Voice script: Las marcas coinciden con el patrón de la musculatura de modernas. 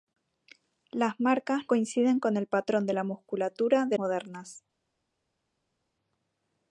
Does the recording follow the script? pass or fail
pass